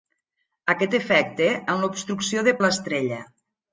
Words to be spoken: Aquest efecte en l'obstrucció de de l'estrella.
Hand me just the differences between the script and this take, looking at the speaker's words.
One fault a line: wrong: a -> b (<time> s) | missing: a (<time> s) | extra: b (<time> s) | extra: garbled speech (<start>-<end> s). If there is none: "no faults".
no faults